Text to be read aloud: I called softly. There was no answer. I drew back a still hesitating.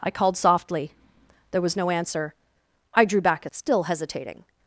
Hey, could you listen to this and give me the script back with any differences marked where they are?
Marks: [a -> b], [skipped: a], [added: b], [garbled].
I called softly. There was no answer. I drew back a still hesitating.